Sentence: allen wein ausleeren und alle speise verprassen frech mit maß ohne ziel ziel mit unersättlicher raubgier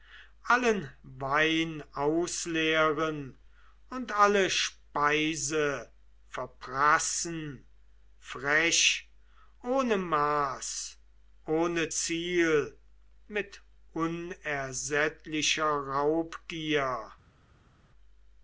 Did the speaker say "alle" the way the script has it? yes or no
yes